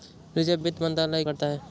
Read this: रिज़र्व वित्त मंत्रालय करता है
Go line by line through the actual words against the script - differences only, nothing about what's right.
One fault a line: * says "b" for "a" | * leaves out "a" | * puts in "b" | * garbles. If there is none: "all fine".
all fine